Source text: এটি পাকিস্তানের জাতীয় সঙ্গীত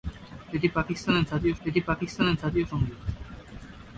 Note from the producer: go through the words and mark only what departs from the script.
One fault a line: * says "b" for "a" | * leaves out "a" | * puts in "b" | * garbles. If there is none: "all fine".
* puts in "এটি পাকিস্তানের জাতীয়"